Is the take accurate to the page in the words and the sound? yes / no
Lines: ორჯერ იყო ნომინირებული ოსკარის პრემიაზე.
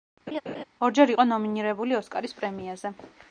no